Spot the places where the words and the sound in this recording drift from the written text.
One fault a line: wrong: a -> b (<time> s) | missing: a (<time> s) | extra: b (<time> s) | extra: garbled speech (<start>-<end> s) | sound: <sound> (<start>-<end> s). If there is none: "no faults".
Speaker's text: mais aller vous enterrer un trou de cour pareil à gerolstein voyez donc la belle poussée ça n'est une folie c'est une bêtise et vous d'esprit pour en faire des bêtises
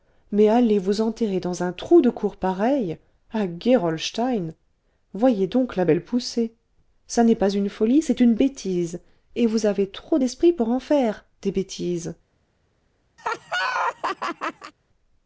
extra: dans (1.4 s)
extra: pas (7.3 s)
extra: avez trop (9.7 s)
sound: laugh (13.2-14.7 s)